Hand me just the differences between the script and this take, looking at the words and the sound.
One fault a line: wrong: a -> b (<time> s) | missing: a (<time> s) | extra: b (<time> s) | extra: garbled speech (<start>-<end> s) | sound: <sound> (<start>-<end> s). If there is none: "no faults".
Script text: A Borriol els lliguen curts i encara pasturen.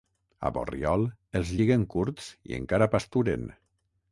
no faults